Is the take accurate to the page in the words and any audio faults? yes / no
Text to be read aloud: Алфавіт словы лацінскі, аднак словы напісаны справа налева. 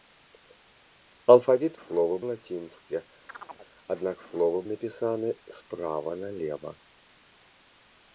no